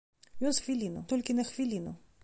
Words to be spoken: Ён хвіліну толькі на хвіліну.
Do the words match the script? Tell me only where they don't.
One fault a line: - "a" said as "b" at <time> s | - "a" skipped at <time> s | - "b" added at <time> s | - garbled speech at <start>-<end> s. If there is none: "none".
none